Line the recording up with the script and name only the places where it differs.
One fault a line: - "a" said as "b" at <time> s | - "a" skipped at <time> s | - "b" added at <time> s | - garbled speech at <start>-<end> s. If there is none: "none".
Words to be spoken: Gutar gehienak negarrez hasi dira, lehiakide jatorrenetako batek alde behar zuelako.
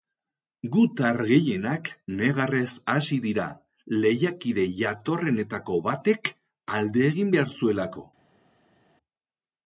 - "egin" added at 7.1 s